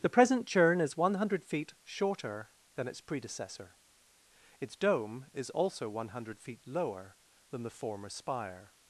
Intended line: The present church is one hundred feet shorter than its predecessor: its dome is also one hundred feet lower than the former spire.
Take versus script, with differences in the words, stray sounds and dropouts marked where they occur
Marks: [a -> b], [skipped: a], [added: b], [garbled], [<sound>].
The present [church -> churn] is one hundred feet shorter than its predecessor: its dome is also one hundred feet lower than the former spire.